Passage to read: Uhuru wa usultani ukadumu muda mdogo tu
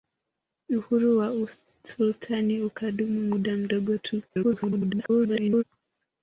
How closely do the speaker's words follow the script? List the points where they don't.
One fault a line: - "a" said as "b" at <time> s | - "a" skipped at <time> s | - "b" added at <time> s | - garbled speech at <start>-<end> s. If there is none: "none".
- garbled speech at 4.3-5.6 s